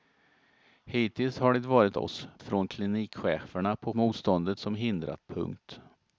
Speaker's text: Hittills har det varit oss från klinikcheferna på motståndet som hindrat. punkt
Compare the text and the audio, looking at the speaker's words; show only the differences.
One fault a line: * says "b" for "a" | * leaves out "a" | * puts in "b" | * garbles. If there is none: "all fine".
all fine